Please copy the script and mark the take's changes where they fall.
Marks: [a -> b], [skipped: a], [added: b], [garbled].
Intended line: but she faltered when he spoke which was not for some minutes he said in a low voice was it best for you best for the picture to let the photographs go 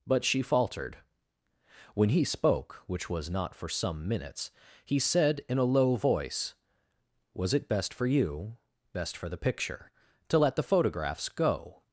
but she faltered when he spoke which was not for some minutes he said in a low voice was it best for you best for the picture to let the photographs go